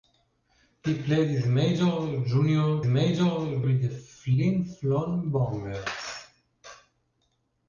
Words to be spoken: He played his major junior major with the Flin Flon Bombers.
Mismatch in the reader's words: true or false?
false